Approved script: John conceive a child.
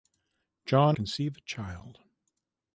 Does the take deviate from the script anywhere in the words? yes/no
no